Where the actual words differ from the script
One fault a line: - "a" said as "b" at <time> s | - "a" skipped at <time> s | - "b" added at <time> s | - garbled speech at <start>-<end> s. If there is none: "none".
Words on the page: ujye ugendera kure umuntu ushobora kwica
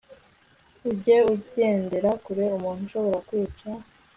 none